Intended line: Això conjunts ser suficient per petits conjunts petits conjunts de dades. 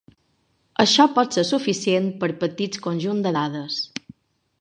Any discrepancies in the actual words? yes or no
yes